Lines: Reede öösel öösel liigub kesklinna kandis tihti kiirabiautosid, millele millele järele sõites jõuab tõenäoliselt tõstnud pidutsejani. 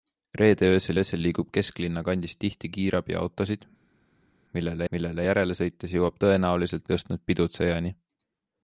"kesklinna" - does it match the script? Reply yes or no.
yes